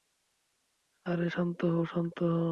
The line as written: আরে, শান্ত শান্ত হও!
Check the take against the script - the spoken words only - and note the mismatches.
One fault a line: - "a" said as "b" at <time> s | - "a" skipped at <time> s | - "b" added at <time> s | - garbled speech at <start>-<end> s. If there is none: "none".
- "হও" added at 1.6 s